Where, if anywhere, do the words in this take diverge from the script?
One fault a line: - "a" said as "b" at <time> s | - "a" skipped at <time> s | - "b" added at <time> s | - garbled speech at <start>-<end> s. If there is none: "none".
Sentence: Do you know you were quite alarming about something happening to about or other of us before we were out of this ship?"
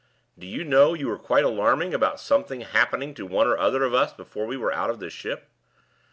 - "about" said as "one" at 3.3 s